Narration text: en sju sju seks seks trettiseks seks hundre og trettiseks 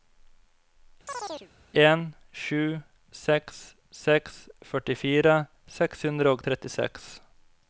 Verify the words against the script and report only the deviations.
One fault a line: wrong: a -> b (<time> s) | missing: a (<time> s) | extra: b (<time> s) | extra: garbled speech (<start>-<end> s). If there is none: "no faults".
missing: sju (2.6 s)
wrong: trettiseks -> førtifire (4.7 s)